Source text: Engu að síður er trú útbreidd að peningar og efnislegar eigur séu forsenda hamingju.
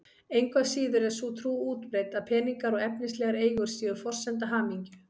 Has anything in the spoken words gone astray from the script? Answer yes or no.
yes